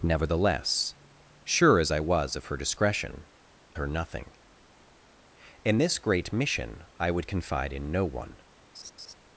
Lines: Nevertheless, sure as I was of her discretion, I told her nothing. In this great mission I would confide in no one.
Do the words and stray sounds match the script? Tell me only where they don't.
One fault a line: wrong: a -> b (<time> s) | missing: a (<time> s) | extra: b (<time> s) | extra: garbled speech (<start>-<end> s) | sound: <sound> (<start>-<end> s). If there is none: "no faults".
missing: I told (3.3 s)
sound: laugh (8.7-9.1 s)